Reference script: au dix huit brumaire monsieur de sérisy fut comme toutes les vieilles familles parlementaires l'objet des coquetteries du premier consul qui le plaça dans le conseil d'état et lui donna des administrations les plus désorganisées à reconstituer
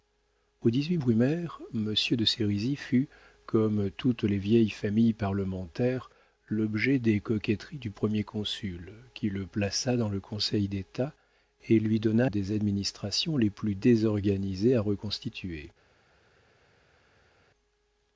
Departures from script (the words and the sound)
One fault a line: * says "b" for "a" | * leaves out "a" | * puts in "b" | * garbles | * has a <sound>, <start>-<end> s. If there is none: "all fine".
all fine